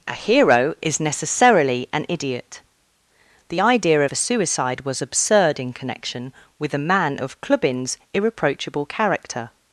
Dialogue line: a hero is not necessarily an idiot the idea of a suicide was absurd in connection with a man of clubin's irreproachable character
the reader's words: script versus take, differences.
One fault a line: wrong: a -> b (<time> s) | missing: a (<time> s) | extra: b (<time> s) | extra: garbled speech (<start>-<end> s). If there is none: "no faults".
missing: not (1.0 s)